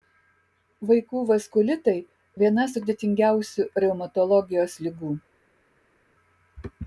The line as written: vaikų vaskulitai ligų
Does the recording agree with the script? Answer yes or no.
no